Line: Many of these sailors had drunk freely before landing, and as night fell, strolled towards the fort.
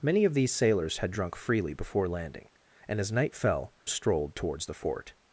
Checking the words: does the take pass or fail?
pass